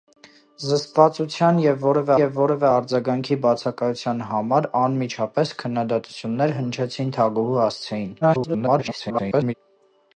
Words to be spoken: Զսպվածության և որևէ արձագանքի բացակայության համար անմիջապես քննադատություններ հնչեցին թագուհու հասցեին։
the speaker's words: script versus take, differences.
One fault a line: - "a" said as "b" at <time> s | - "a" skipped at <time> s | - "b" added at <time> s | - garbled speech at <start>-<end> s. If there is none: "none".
- "և որևէ" added at 2.2 s
- garbled speech at 8.2-9.5 s